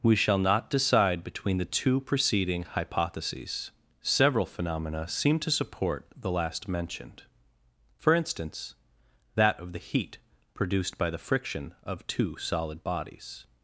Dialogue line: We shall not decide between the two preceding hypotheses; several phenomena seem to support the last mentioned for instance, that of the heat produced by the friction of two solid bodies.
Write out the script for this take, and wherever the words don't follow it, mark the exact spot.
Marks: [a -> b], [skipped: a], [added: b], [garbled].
We shall not decide between the two preceding hypotheses; several phenomena seem to support the last mentioned for instance, that of the heat produced by the friction of two solid bodies.